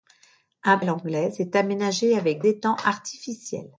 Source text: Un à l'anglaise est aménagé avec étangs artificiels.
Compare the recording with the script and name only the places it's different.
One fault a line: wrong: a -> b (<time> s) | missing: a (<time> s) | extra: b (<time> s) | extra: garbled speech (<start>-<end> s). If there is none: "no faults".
no faults